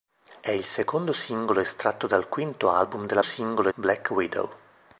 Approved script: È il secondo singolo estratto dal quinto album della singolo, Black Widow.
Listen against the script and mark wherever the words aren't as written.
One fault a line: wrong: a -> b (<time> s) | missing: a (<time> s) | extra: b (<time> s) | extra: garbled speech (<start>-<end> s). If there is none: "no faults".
no faults